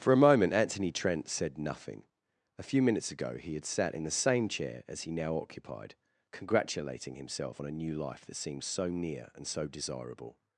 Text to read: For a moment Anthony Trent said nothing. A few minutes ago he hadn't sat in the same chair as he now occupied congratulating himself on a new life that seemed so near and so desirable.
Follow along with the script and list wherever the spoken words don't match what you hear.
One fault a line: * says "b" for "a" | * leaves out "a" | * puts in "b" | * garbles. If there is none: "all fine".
* says "had" for "hadn't"